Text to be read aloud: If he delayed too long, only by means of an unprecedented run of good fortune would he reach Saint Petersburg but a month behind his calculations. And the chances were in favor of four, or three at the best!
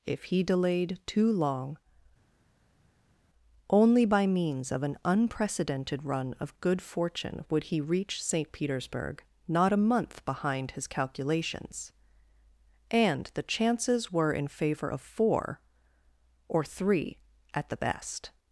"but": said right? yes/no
no